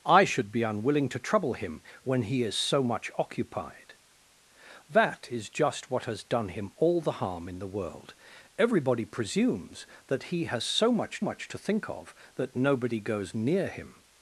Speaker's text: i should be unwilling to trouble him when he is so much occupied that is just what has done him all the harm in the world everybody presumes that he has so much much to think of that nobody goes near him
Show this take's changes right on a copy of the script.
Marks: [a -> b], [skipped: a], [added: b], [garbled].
i should be unwilling to trouble him when he is so much occupied that is just what has done him all the harm in the world everybody presumes that he has so much much to think of that nobody goes near him